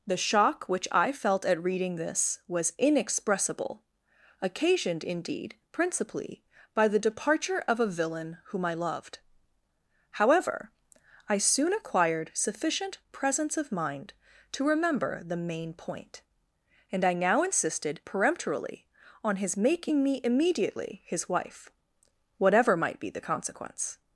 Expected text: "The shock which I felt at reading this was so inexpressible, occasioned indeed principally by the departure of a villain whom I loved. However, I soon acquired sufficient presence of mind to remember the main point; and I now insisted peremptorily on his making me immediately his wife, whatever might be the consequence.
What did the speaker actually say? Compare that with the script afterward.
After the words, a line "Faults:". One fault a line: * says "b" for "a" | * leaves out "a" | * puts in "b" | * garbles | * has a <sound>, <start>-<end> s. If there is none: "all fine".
"The shock which I felt at reading this was inexpressible, occasioned indeed principally by the departure of a villain whom I loved. However, I soon acquired sufficient presence of mind to remember the main point; and I now insisted peremptorily on his making me immediately his wife, whatever might be the consequence.
Faults:
* leaves out "so"